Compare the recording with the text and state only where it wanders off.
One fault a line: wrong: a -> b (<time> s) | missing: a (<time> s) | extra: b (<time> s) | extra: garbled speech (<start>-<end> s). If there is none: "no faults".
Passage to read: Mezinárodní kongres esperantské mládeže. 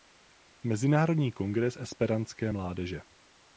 no faults